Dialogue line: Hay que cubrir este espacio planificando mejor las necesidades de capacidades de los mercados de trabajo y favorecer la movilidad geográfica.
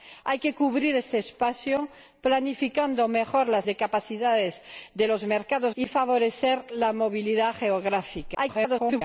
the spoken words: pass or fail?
fail